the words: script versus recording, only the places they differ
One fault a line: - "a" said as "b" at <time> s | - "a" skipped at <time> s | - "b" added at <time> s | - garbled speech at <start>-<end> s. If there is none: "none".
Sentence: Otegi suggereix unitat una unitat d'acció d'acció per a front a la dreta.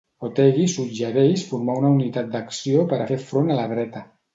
- "unitat" said as "formar" at 1.5 s
- "d'acció" skipped at 2.9 s
- "fer" added at 3.1 s